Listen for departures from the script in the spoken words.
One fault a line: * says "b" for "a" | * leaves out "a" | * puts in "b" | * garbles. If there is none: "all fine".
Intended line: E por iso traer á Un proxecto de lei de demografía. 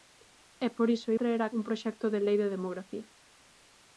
all fine